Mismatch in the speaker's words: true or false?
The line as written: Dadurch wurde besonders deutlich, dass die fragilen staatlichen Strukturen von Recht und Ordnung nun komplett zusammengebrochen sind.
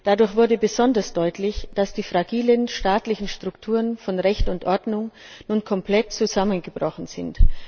false